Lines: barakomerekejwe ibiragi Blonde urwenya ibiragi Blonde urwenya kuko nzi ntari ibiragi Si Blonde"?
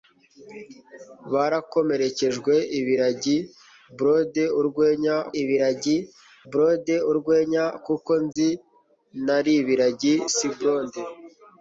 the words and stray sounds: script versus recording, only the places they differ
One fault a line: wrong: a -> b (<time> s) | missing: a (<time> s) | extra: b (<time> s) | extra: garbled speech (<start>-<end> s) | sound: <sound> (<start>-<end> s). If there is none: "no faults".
sound: dropout (8.3-8.4 s)